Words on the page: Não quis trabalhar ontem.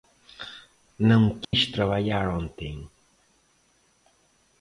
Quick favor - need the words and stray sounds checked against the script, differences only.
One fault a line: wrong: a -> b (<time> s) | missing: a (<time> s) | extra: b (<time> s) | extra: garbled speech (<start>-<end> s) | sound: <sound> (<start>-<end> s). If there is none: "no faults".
sound: dropout (1.4-1.5 s)